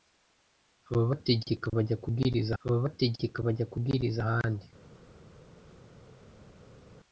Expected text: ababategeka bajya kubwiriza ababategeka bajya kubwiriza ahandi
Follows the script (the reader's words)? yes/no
yes